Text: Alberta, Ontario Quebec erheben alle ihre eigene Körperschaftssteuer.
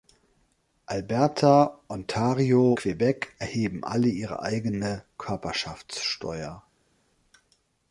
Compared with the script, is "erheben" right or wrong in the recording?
right